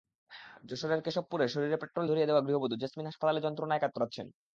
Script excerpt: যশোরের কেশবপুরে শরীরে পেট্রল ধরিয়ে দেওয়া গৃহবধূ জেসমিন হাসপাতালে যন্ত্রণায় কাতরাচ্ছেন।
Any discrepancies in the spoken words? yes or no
no